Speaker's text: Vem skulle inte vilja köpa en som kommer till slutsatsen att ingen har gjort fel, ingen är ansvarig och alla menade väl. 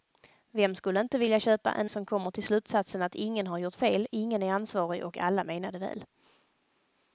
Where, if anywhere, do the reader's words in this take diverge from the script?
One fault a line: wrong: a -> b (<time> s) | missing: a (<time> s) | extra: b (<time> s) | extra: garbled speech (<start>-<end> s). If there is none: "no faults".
no faults